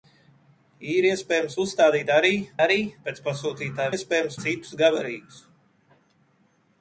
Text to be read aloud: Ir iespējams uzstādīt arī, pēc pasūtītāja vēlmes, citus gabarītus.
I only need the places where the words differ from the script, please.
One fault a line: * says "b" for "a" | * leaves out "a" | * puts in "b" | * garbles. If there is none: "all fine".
* puts in "arī"
* says "iespējams" for "vēlmes"